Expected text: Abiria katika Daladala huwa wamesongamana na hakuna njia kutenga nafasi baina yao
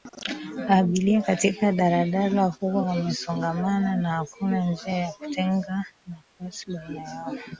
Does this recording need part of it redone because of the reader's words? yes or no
yes